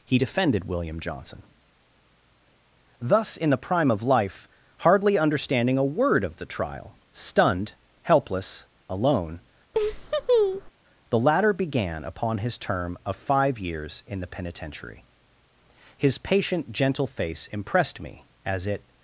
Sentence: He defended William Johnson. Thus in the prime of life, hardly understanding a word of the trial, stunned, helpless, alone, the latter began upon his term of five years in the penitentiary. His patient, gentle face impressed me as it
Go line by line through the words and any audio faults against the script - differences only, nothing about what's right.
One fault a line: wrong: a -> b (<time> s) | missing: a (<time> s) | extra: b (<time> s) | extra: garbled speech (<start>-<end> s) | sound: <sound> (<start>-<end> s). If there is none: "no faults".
sound: laugh (9.7-10.7 s)